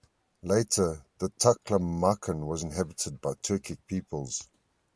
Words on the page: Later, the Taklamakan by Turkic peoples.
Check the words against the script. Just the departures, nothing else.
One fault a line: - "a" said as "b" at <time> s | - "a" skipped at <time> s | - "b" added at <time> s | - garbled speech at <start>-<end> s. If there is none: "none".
- "was inhabited" added at 2.5 s